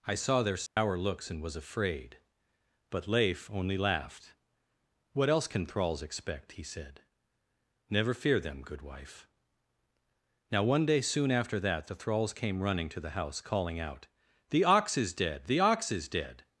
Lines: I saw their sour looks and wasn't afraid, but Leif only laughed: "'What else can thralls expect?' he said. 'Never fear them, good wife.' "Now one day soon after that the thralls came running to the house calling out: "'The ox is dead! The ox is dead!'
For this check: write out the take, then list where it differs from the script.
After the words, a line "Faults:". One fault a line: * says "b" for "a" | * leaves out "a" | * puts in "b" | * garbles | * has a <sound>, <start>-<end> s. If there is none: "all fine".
I saw their sour looks and was afraid, but Leif only laughed: "'What else can thralls expect?' he said. 'Never fear them, good wife.' "Now one day soon after that the thralls came running to the house calling out: "'The ox is dead! The ox is dead!'
Faults:
* has a dropout, 0.7-0.8 s
* says "was" for "wasn't"